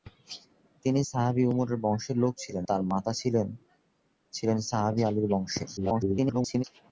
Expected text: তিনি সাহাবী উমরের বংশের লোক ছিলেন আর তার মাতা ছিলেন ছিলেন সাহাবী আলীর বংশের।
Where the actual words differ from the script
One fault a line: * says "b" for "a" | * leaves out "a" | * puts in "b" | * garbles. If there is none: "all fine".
* leaves out "আর"
* garbles